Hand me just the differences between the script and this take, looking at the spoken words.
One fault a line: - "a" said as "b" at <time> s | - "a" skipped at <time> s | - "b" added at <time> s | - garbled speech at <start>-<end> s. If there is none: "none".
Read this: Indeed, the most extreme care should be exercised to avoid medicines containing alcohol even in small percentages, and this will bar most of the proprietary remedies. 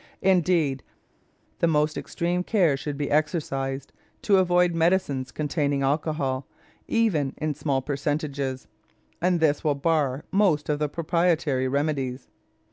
none